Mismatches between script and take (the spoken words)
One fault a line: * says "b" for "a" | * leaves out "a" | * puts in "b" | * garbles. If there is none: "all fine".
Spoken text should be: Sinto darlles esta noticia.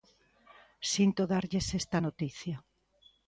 all fine